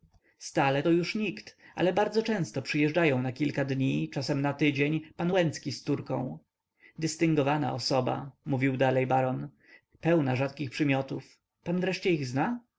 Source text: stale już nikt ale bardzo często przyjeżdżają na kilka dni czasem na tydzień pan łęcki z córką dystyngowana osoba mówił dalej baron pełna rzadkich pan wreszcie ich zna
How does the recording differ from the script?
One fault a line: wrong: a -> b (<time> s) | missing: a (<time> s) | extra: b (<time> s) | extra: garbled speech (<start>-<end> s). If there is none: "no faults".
extra: to (0.8 s)
extra: przymiotów (10.7 s)